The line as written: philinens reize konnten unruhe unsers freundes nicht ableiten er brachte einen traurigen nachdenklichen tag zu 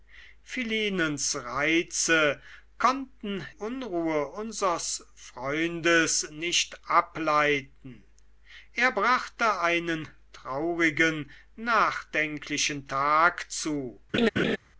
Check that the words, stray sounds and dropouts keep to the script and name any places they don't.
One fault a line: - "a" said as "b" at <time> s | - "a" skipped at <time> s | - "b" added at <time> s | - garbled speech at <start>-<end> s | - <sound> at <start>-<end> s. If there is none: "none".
- laugh at 14.1-14.6 s